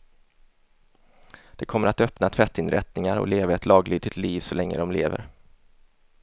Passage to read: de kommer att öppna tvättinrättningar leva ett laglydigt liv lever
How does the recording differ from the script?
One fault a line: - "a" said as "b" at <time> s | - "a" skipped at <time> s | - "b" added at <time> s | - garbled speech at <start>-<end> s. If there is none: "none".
- "och" added at 3.2 s
- "så länge de" added at 4.4 s